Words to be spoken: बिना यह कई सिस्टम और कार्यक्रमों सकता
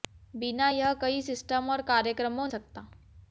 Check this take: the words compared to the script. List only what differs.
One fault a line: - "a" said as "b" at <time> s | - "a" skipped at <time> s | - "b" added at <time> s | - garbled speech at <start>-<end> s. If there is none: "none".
none